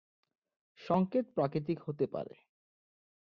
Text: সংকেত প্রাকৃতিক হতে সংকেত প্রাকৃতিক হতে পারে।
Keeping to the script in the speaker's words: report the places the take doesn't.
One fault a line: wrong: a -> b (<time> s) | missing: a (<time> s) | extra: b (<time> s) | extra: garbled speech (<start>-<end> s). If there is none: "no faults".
missing: সংকেত প্রাকৃতিক হতে (2.1 s)